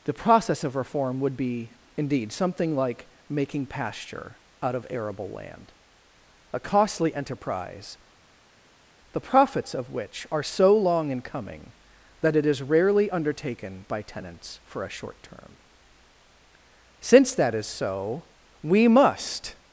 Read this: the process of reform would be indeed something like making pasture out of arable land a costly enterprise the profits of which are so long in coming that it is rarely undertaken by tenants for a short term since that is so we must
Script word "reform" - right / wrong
right